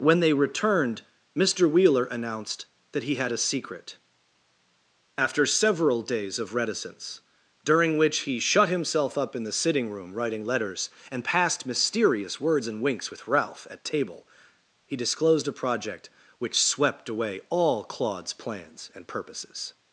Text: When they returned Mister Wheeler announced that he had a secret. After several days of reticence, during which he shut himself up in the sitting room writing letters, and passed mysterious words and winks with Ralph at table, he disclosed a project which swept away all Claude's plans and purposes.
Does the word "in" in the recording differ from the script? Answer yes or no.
no